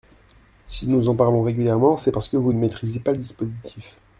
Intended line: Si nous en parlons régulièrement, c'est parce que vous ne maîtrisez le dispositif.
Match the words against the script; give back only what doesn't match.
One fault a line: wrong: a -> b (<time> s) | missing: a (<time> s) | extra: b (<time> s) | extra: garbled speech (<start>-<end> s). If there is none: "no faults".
extra: pas (3.0 s)